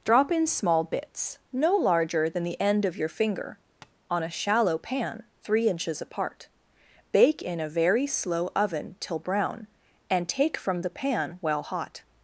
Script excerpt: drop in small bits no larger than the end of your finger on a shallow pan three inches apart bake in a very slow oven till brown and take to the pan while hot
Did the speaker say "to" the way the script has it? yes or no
no